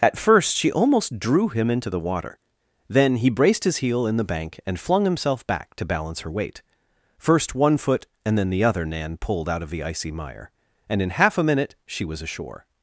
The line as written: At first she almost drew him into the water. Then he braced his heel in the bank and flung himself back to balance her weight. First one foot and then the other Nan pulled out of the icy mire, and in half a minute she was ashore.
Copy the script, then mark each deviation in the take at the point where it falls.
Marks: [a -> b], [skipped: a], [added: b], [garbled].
At first she almost drew him into the water. Then he braced his heel in the bank and flung himself back to balance her weight. First one foot and then the other Nan pulled out of the icy mire, and in half a minute she was ashore.